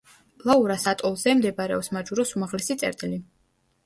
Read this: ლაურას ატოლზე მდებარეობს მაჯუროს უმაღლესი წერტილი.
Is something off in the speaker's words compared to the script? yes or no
no